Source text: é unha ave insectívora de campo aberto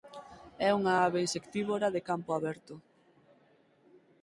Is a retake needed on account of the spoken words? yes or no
no